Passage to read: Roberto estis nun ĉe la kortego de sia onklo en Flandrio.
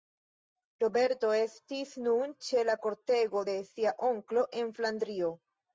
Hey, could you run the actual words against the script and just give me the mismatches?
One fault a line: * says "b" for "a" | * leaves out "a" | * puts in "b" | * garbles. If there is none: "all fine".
all fine